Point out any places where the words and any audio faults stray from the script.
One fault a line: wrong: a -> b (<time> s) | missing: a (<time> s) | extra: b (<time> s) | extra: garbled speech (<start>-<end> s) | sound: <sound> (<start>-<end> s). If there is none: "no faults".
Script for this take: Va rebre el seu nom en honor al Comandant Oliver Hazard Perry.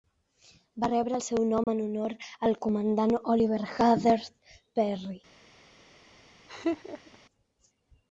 sound: dropout (1.6-1.7 s)
sound: laugh (6.5-7.2 s)